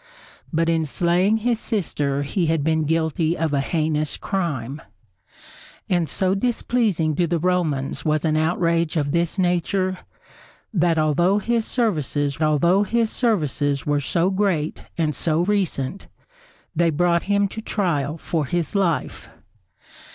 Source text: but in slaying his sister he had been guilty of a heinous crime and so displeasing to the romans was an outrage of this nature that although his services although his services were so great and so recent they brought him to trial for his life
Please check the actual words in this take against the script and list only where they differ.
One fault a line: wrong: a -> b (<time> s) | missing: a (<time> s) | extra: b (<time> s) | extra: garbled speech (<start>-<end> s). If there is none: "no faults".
no faults